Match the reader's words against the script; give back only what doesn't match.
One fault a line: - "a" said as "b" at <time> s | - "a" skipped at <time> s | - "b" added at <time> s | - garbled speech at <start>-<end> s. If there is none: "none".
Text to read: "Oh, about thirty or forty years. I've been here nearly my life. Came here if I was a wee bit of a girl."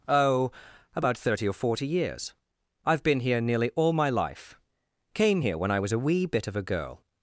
- "all" added at 3.8 s
- "if" said as "when" at 5.6 s